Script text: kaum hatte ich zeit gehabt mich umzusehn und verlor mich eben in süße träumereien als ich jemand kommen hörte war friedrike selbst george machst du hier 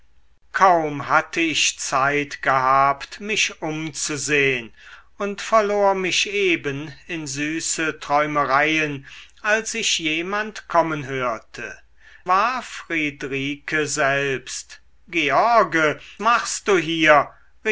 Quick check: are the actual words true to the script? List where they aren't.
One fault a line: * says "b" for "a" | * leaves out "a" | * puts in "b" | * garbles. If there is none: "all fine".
all fine